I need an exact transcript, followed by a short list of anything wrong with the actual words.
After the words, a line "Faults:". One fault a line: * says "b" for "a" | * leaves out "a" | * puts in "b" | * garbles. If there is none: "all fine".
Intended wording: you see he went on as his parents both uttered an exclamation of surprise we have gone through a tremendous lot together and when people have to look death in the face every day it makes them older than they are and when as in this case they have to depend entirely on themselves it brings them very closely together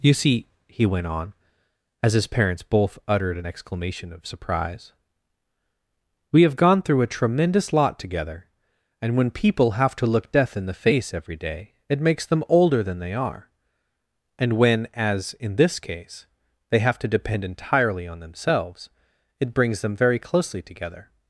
you see he went on as his parents both uttered an exclamation of surprise we have gone through a tremendous lot together and when people have to look death in the face every day it makes them older than they are and when as in this case they have to depend entirely on themselves it brings them very closely together
Faults:
all fine